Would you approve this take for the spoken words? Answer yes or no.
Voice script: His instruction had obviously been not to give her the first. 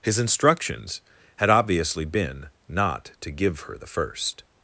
no